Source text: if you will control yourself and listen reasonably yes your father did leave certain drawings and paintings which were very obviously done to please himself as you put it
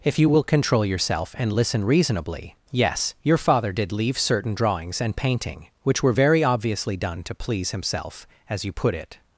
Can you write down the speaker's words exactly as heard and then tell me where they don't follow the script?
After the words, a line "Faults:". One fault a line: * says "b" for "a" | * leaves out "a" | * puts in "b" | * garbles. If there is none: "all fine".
if you will control yourself and listen reasonably yes your father did leave certain drawings and painting which were very obviously done to please himself as you put it
Faults:
* says "painting" for "paintings"